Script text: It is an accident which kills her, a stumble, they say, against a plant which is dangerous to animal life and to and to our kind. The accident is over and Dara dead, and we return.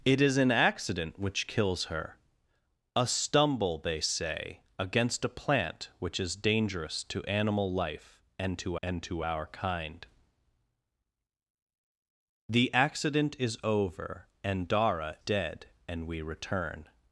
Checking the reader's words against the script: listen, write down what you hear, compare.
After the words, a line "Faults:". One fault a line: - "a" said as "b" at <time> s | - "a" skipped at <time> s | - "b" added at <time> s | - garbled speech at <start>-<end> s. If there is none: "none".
It is an accident which kills her, a stumble, they say, against a plant which is dangerous to animal life and to and to our kind. The accident is over and Dara dead, and we return.
Faults:
none